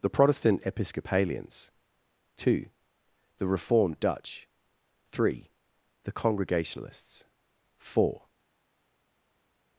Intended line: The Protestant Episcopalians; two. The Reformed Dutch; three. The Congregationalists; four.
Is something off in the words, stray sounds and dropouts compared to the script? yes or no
no